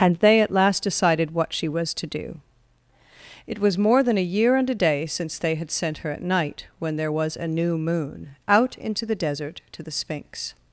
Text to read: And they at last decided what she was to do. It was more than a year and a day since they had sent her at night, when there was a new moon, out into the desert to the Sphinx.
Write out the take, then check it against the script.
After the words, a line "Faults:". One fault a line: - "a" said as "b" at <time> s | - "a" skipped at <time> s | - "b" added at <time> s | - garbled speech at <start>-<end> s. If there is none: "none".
And they at last decided what she was to do. It was more than a year and a day since they had sent her at night, when there was a new moon, out into the desert to the Sphinx.
Faults:
none